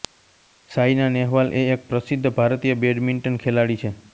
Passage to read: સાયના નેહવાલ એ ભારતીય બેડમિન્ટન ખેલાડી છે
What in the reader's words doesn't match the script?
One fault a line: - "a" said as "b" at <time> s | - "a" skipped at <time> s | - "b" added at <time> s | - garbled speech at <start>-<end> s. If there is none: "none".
- "એક પ્રસિદ્ધ" added at 1.7 s